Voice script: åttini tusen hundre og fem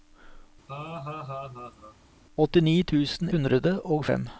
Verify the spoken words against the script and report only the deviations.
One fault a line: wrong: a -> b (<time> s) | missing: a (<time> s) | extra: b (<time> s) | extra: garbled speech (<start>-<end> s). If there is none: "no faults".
no faults